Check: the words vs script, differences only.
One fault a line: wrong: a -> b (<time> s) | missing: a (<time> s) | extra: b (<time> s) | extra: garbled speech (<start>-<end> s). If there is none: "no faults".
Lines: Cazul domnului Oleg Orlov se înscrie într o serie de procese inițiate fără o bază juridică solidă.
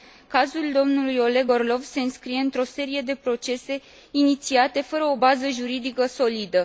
no faults